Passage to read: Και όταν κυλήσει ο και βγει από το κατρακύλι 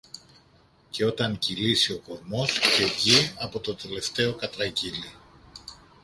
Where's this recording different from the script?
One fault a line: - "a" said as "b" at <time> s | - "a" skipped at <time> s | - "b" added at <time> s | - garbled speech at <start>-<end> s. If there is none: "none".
- "κορμός" added at 2.0 s
- "τελευταίο" added at 3.8 s